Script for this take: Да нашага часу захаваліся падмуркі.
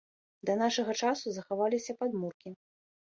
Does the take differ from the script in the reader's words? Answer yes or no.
no